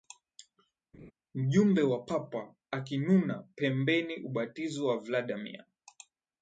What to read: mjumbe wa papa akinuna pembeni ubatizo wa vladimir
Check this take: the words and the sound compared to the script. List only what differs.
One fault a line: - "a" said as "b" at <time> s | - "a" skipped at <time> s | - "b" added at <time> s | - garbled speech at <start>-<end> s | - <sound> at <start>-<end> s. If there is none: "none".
- laugh at 0.9-1.1 s